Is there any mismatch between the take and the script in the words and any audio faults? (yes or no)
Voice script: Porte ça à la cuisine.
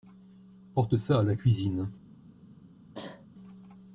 yes